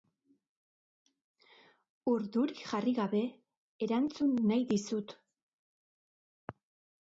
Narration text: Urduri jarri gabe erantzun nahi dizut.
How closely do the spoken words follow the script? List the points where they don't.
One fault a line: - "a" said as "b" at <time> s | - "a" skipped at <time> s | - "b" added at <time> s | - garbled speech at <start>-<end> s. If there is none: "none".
none